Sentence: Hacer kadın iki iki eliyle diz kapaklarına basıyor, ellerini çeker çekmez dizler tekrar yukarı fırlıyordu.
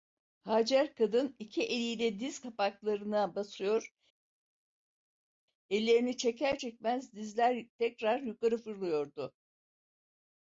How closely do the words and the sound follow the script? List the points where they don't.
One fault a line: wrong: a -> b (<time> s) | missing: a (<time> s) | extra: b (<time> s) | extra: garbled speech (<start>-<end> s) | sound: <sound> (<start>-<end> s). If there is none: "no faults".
missing: iki (1.6 s)